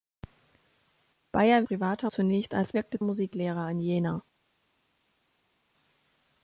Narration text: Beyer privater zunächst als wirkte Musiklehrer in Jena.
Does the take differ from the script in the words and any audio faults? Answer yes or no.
no